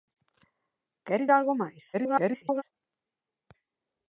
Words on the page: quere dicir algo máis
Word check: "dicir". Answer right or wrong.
wrong